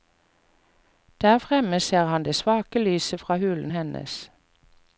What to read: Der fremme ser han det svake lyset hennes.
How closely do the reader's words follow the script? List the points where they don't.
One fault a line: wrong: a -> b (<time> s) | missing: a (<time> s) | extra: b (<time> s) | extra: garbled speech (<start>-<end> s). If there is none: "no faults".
extra: fra hulen (3.2 s)